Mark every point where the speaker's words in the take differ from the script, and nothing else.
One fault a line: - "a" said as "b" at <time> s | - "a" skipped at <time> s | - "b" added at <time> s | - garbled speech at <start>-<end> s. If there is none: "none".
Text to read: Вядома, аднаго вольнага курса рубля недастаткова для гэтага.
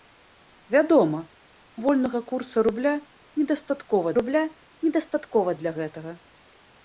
- "аднаго" skipped at 1.2 s
- "рубля недастаткова" added at 4.2 s